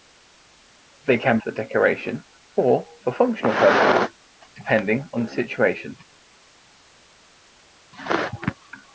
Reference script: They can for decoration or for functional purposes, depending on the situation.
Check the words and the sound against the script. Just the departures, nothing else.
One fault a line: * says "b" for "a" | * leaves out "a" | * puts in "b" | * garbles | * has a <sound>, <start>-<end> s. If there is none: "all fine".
all fine